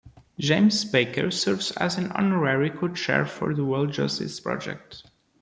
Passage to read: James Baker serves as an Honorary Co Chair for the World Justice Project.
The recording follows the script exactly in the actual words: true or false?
true